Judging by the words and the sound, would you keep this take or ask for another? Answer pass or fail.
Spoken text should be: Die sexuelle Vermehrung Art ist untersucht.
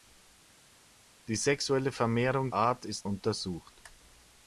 pass